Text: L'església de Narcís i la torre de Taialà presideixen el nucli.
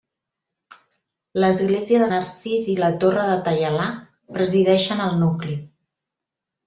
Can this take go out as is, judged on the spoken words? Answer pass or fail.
pass